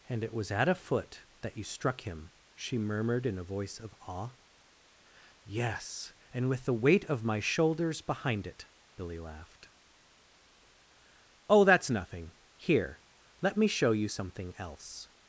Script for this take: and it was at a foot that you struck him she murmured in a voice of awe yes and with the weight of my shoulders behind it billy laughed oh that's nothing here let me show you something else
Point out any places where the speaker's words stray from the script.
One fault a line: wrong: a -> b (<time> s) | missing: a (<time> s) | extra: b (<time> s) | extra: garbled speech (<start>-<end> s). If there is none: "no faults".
no faults